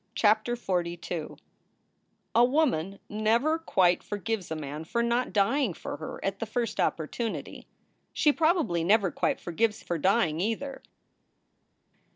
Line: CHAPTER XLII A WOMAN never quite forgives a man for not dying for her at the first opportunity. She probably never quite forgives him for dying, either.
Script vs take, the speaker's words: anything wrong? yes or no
yes